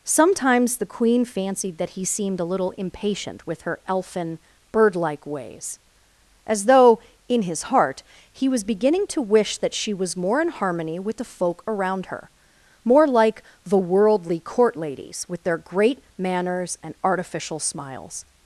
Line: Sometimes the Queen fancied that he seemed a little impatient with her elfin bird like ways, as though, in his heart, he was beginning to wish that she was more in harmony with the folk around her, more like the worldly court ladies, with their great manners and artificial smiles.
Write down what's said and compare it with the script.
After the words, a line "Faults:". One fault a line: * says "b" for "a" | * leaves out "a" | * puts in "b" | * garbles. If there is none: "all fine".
Sometimes the Queen fancied that he seemed a little impatient with her elfin bird like ways, as though, in his heart, he was beginning to wish that she was more in harmony with the folk around her, more like the worldly court ladies, with their great manners and artificial smiles.
Faults:
all fine